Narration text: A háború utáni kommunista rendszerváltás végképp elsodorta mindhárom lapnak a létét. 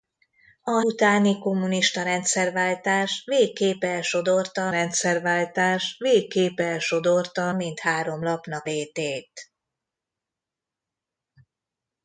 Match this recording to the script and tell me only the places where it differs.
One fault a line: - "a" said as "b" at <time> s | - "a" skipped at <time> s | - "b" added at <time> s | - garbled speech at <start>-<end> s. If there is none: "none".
- "háború" skipped at 0.8 s
- "rendszerváltás végképp elsodorta" added at 4.7 s
- "a" skipped at 8.7 s